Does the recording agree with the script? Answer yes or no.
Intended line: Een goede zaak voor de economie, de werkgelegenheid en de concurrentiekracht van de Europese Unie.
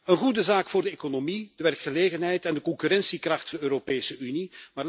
no